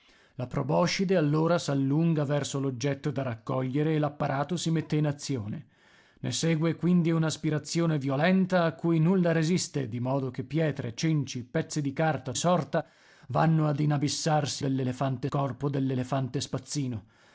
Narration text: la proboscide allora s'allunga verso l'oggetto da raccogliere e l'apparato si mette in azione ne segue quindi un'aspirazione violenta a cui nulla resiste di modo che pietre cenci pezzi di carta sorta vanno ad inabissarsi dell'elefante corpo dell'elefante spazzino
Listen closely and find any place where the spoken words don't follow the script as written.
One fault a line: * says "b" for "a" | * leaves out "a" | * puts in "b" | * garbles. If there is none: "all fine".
all fine